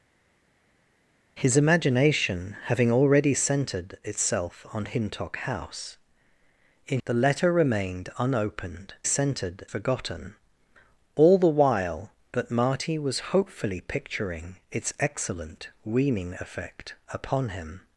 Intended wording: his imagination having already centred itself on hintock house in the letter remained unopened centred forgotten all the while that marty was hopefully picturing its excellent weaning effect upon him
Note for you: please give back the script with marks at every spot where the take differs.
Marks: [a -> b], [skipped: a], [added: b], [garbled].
his imagination having already centred itself on hintock house in the letter remained unopened centred forgotten all the while that marty was hopefully picturing its excellent weaning effect upon him